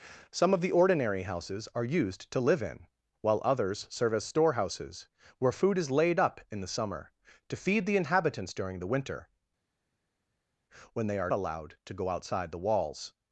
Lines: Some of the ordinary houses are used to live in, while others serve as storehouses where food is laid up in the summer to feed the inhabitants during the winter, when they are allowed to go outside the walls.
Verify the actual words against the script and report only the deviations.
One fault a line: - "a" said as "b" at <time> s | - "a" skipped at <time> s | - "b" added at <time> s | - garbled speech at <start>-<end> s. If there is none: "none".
none